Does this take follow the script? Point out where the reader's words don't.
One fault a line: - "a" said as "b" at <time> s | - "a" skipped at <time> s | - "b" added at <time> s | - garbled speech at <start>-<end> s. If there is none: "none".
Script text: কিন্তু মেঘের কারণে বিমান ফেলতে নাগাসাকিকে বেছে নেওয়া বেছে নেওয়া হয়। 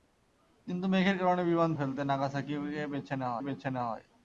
none